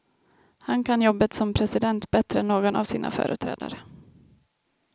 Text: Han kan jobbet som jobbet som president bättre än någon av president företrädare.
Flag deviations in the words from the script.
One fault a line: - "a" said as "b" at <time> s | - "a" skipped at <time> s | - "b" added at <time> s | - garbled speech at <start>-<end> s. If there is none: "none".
- "jobbet som" skipped at 1.5 s
- "president" said as "sina" at 2.8 s